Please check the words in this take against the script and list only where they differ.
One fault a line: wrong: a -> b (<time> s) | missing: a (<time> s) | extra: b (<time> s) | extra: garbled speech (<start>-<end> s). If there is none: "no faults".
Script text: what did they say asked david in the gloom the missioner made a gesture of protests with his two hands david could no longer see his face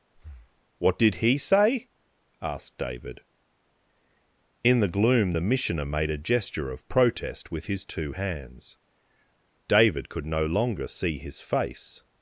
wrong: they -> he (1.2 s)
wrong: protests -> protest (6.9 s)